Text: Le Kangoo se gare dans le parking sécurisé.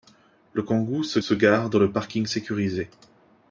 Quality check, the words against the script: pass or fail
fail